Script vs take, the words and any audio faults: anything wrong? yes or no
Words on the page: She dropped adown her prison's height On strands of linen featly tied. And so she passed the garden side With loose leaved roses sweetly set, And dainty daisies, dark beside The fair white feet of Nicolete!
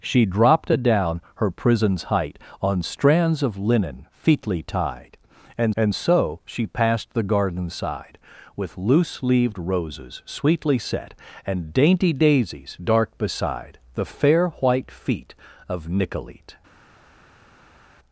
yes